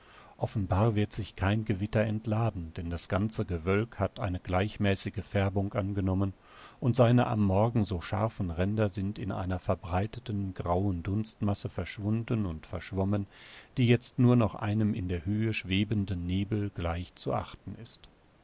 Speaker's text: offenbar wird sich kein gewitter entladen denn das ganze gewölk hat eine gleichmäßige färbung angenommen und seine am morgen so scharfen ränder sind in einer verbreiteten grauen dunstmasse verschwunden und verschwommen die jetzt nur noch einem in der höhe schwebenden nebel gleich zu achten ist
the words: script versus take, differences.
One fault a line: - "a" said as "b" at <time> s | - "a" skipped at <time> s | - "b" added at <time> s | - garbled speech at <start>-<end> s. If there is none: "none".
none